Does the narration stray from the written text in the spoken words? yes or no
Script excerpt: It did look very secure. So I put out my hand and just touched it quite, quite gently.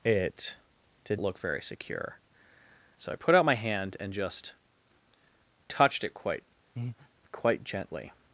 no